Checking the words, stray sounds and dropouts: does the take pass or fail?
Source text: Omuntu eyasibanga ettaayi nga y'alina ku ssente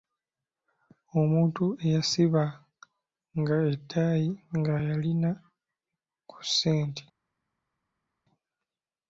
pass